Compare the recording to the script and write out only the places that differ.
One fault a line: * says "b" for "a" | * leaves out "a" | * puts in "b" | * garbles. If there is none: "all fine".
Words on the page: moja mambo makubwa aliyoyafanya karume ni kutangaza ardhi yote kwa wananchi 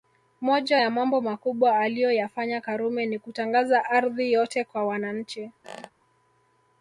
* puts in "ya"